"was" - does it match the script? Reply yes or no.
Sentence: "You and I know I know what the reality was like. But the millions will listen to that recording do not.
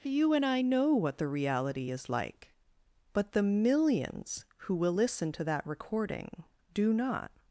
no